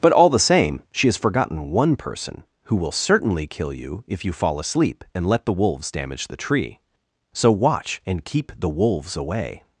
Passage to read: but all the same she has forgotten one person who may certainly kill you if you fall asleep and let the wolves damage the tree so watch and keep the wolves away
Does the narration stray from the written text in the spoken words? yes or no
yes